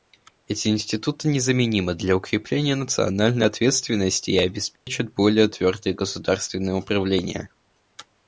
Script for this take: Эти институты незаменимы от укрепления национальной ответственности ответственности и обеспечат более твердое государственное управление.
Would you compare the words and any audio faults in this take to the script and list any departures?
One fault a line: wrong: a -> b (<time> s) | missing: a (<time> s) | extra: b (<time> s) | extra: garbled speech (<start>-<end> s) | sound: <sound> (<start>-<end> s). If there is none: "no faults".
wrong: от -> для (1.9 s)
missing: ответственности (4.3 s)
sound: dropout (4.8-4.9 s)